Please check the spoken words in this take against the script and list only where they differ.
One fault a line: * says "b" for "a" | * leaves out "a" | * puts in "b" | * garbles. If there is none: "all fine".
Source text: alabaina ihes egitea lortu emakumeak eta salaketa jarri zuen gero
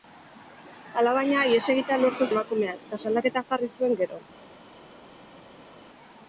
all fine